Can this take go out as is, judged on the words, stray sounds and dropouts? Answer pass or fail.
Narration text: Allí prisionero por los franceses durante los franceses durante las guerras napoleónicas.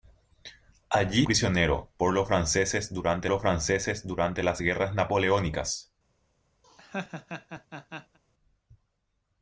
fail